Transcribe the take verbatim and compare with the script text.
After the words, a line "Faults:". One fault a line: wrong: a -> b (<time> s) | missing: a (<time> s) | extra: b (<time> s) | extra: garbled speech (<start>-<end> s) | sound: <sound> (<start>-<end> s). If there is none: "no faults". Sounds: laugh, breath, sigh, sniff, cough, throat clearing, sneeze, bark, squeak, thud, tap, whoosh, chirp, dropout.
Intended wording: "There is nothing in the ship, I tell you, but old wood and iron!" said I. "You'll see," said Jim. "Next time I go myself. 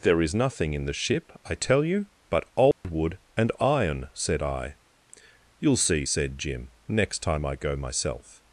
"There is nothing in the ship, I tell you, but old wood and iron!" said I. "You'll see," said Jim. "Next time I go myself.
Faults:
sound: dropout (2.7-2.8 s)